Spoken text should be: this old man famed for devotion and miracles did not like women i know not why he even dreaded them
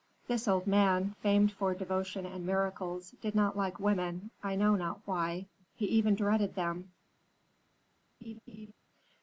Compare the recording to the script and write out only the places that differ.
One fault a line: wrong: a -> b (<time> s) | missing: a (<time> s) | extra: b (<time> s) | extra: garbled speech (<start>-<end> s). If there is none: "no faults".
no faults